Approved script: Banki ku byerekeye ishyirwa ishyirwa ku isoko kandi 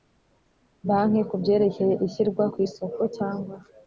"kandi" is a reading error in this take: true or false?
true